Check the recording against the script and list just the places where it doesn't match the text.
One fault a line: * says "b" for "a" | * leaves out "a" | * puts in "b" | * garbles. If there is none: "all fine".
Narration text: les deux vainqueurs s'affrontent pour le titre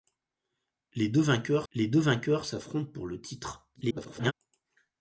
* puts in "les deux vainqueurs"
* garbles